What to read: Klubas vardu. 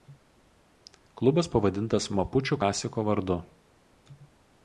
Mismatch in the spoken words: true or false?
true